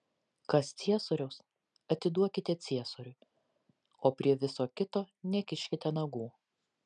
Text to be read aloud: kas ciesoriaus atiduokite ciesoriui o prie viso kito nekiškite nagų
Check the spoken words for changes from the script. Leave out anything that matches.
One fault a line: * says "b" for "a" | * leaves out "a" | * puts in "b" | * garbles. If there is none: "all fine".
all fine